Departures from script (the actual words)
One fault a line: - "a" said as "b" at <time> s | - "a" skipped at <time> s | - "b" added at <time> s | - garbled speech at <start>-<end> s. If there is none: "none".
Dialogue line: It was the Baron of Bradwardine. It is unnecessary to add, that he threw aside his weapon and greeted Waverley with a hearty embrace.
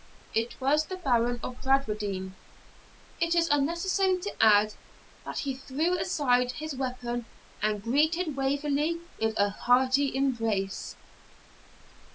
none